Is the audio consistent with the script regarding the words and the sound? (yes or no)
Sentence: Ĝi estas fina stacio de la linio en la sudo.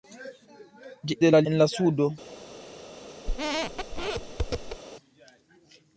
no